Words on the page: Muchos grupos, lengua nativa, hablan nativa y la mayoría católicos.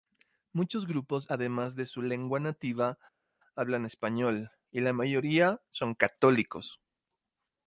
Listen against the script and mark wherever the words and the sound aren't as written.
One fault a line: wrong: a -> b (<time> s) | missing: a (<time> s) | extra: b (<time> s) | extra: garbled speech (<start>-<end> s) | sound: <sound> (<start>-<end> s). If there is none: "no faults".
extra: además de su (1.3 s)
wrong: nativa -> español (3.8 s)
extra: son (5.7 s)